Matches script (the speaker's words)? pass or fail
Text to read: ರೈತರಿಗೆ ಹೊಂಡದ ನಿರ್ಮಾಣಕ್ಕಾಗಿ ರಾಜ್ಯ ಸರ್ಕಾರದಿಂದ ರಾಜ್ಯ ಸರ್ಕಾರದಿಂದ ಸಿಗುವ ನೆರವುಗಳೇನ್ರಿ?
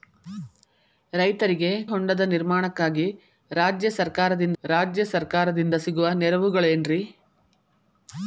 pass